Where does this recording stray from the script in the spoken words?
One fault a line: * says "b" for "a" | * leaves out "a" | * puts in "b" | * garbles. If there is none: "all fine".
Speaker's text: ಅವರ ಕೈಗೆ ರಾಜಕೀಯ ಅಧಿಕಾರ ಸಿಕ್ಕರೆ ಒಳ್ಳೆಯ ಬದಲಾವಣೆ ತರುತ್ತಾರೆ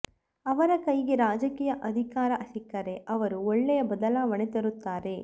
* puts in "ಅವರು"